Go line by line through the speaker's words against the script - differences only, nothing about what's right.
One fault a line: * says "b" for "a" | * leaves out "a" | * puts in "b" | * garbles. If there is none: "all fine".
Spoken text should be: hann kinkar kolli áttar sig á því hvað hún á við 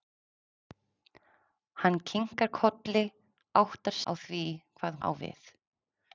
* leaves out "sig"
* leaves out "hún"